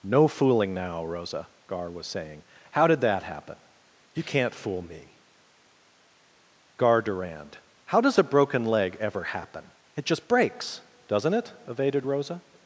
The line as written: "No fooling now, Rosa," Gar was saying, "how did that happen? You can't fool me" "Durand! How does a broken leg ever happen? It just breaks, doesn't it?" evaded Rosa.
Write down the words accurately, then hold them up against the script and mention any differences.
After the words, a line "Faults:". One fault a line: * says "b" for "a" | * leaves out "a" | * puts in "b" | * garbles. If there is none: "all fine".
"No fooling now, Rosa," Gar was saying, "how did that happen? You can't fool me" "Gar Durand! How does a broken leg ever happen? It just breaks, doesn't it?" evaded Rosa.
Faults:
* puts in "Gar"